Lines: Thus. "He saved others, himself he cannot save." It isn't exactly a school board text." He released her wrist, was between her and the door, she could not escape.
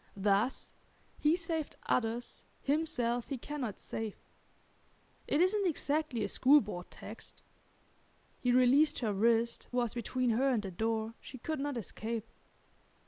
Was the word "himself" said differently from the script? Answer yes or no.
no